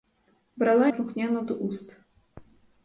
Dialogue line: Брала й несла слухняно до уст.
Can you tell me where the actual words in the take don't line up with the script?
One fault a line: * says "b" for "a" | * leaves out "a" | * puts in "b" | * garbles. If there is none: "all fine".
* leaves out "й несла"